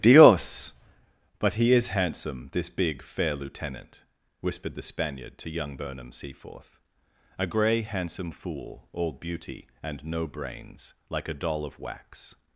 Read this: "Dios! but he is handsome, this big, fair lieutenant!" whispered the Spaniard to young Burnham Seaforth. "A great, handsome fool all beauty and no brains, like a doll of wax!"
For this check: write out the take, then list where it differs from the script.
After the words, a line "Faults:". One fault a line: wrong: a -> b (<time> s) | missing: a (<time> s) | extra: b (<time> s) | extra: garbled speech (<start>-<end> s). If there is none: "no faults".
"Dios! but he is handsome, this big, fair lieutenant!" whispered the Spaniard to young Burnham Seaforth. "A grey, handsome fool all beauty and no brains, like a doll of wax!"
Faults:
wrong: great -> grey (7.5 s)